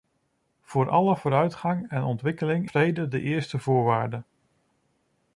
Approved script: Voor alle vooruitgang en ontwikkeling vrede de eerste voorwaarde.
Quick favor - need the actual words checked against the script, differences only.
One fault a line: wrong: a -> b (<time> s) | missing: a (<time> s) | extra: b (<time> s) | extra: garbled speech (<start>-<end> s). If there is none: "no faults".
no faults